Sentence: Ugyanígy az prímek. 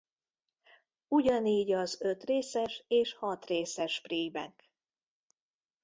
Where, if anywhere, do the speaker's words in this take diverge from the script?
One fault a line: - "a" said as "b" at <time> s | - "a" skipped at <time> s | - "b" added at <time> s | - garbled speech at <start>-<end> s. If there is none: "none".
- "ötrészes és hatrészes" added at 2.0 s